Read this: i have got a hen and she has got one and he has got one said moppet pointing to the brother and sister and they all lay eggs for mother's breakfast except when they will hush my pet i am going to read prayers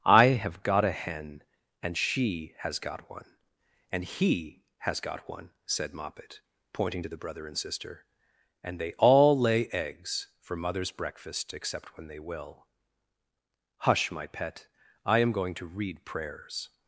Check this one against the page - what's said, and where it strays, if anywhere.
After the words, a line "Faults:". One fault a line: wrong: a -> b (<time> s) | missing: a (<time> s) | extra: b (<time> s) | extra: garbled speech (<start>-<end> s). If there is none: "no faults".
i have got a hen and she has got one and he has got one said moppet pointing to the brother and sister and they all lay eggs for mother's breakfast except when they will hush my pet i am going to read prayers
Faults:
no faults